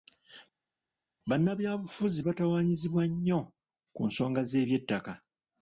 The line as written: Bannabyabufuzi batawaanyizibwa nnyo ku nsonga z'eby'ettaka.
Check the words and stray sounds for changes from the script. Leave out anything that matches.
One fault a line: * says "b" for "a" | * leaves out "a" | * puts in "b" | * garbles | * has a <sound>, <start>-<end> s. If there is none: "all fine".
all fine